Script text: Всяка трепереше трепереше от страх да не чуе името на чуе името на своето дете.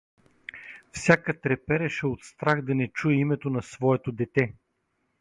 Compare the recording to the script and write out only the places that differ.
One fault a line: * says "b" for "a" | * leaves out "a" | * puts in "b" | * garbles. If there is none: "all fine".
* leaves out "трепереше"
* leaves out "чуе името на"